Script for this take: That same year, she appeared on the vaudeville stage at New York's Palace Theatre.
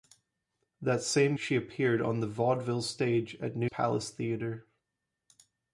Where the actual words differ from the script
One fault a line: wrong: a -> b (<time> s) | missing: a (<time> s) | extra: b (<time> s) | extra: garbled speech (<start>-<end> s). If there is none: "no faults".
missing: year (1.4 s)
missing: York's (3.7 s)